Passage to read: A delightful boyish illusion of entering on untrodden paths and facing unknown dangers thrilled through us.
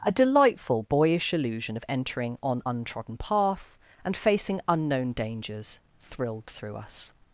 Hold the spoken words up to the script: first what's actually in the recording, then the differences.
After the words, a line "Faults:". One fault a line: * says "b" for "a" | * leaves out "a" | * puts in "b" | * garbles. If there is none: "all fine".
A delightful boyish illusion of entering on untrodden path and facing unknown dangers thrilled through us.
Faults:
* says "path" for "paths"